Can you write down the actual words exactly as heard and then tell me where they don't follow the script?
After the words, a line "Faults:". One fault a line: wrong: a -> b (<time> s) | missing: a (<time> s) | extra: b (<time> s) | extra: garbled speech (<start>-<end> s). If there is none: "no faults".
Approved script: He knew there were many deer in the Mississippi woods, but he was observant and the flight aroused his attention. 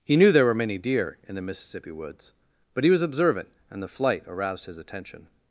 He knew there were many deer in the Mississippi woods, but he was observant and the flight aroused his attention.
Faults:
no faults